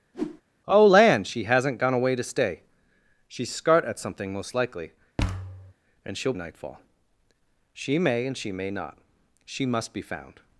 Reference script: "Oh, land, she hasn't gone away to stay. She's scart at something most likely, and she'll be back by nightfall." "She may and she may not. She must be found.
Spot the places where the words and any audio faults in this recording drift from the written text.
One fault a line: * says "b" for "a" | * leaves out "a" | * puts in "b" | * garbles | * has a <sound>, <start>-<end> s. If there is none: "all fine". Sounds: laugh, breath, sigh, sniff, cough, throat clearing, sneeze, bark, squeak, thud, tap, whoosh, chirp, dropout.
* has a whoosh, 0.1-0.4 s
* has a thud, 5.2-5.7 s
* leaves out "be back by"